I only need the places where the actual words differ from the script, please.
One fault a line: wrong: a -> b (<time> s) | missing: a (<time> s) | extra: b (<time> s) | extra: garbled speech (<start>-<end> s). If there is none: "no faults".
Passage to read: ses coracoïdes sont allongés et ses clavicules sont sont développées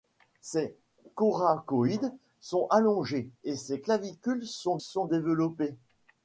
no faults